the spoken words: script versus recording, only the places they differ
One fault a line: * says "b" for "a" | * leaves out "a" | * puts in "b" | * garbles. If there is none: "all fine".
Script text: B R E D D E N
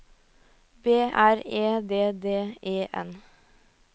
all fine